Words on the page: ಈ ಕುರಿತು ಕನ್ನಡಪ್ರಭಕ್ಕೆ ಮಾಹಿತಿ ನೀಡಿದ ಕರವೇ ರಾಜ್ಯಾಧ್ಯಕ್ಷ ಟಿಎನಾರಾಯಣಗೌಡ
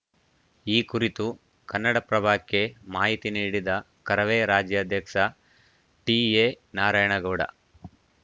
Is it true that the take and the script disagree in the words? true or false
false